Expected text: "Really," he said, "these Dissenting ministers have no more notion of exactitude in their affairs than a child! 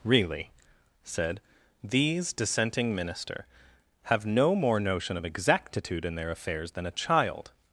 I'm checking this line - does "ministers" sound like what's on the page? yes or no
no